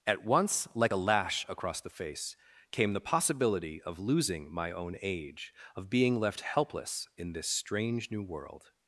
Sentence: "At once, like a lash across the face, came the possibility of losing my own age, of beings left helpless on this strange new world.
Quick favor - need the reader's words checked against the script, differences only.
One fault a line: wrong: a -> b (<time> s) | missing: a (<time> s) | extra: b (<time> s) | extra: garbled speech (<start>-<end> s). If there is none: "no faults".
wrong: beings -> being (5.9 s)
wrong: on -> in (7.2 s)